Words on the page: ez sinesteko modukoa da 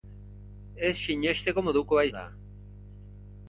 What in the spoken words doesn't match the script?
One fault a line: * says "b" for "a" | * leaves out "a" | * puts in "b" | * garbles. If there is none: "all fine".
all fine